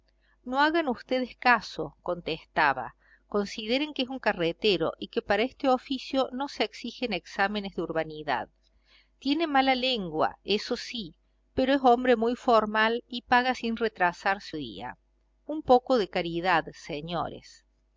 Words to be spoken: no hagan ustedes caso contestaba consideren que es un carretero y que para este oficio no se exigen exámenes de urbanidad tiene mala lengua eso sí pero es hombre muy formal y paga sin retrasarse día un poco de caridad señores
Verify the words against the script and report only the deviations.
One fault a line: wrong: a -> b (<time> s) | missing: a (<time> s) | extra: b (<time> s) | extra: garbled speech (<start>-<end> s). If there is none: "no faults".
no faults